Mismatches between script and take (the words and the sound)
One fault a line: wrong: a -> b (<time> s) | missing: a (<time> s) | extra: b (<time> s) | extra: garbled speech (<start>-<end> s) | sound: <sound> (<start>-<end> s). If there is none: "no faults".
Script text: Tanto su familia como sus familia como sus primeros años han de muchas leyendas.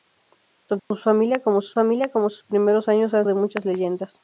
sound: dropout (0.8-0.9 s)